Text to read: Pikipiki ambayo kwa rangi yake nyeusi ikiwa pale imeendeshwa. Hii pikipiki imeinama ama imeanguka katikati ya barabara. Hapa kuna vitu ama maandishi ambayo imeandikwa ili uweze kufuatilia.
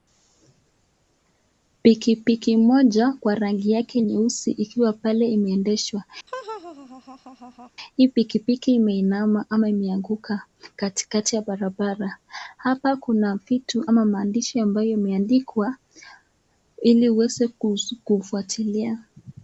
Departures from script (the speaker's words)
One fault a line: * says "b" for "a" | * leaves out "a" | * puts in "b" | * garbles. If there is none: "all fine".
* says "moja" for "ambayo"